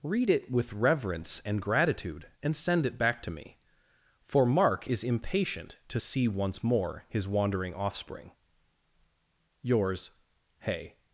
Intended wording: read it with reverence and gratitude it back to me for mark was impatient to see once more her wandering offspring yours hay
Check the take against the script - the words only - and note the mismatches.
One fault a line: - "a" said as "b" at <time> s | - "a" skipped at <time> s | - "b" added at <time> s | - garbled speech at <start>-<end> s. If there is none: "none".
- "and send" added at 2.4 s
- "was" said as "is" at 4.9 s
- "her" said as "his" at 7.1 s